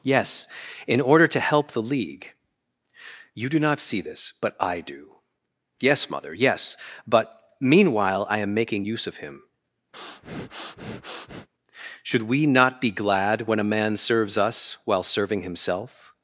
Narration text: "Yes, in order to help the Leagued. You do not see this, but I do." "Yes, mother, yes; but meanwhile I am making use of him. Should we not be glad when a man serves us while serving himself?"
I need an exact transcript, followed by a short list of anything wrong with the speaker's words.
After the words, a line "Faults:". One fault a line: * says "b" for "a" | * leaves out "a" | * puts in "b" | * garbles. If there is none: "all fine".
"Yes, in order to help the League. You do not see this, but I do." "Yes, mother, yes; but meanwhile I am making use of him. Should we not be glad when a man serves us while serving himself?"
Faults:
* says "League" for "Leagued"